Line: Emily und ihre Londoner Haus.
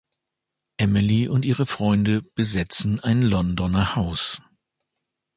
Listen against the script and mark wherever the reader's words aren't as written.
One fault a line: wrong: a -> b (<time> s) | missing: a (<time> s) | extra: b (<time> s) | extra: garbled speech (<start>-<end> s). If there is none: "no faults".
extra: Freunde besetzen ein (1.7 s)